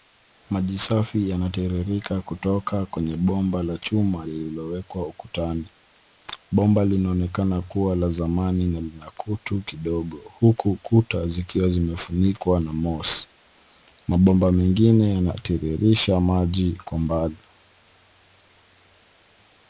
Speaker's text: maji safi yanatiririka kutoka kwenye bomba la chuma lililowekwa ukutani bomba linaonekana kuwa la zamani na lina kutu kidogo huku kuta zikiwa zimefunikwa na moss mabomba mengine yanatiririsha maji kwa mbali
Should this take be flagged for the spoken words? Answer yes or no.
no